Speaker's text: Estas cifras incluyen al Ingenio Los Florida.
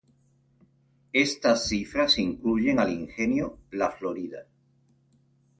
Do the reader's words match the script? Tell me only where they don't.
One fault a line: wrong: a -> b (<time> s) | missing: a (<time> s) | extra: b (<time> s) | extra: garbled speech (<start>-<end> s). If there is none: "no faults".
wrong: Los -> La (3.7 s)